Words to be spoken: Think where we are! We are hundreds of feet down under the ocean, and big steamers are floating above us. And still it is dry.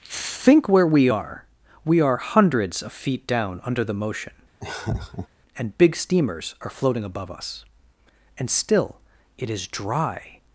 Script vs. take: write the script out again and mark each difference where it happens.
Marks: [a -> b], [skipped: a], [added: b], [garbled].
Think where we are! We are hundreds of feet down under the [ocean, -> motion] and big steamers are floating above us. And still it is dry.